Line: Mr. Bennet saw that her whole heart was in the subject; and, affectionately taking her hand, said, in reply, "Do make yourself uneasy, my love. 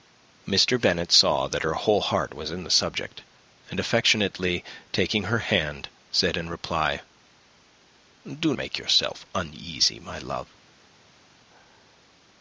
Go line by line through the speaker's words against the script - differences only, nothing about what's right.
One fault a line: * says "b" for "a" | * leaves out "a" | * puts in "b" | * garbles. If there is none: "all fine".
all fine